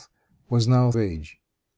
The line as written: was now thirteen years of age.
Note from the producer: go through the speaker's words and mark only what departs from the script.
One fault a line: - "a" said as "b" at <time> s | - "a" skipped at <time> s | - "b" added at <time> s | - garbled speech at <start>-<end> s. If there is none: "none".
- "thirteen years of" skipped at 0.9 s